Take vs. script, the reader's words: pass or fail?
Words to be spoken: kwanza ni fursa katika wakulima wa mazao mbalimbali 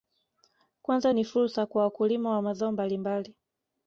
fail